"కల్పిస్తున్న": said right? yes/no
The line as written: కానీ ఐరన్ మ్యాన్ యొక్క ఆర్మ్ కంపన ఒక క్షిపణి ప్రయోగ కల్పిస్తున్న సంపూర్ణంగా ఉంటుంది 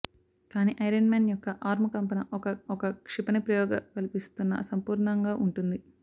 yes